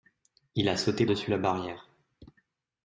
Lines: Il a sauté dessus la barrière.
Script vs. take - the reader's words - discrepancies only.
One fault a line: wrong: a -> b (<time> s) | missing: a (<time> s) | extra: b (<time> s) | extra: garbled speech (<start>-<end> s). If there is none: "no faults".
no faults